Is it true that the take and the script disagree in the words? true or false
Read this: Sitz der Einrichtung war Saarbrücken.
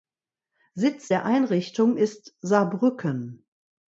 true